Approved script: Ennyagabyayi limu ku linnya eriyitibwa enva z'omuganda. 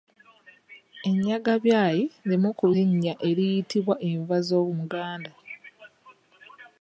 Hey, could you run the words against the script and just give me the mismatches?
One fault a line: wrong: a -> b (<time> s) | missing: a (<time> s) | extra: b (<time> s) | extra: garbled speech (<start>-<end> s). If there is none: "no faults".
no faults